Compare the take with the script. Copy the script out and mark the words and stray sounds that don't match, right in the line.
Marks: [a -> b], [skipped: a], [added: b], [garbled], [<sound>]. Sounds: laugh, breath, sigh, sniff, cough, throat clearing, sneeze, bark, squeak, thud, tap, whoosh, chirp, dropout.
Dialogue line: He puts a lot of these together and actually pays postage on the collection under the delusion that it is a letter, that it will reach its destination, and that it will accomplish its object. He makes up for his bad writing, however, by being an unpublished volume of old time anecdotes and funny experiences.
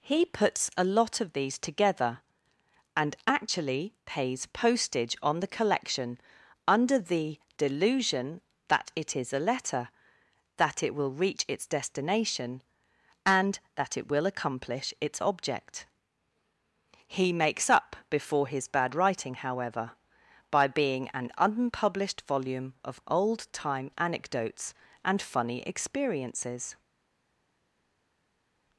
He puts a lot of these together and actually pays postage on the collection under the delusion that it is a letter, that it will reach its destination, and that it will accomplish its object. He makes up [for -> before] his bad writing, however, by being an unpublished volume of old time anecdotes and funny experiences.